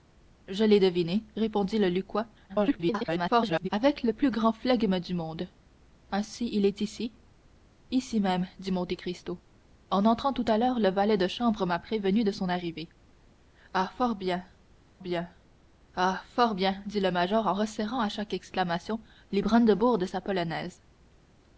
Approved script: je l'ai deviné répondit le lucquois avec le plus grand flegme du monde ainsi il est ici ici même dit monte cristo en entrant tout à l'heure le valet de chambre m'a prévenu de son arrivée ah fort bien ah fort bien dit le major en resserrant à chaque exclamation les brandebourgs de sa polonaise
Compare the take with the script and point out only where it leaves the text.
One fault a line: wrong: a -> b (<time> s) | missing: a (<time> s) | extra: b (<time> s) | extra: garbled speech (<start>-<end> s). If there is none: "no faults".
extra: garbled speech (2.5-3.7 s)
extra: bien (15.0 s)